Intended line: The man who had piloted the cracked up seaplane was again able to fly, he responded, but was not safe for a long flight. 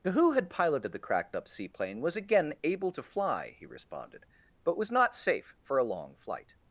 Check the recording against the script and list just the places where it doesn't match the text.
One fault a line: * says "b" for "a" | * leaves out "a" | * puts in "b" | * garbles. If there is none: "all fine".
* leaves out "man"